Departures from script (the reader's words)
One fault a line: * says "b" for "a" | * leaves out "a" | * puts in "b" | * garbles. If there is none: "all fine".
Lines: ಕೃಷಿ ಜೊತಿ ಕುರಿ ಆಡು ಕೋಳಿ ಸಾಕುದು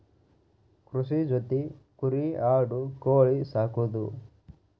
all fine